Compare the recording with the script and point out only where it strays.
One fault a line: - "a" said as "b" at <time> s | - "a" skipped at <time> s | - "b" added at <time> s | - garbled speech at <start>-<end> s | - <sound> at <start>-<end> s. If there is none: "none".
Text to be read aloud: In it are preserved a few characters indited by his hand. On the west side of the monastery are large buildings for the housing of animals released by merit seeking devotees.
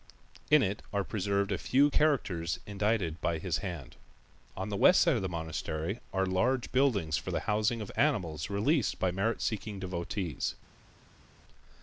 none